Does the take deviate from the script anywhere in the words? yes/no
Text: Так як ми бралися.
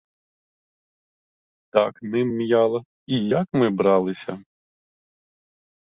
yes